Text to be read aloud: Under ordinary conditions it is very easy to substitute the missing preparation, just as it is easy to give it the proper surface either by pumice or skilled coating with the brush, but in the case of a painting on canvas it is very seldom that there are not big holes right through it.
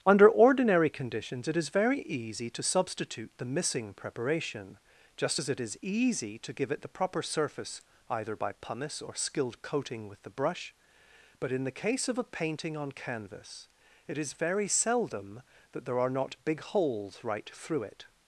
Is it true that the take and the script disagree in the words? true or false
false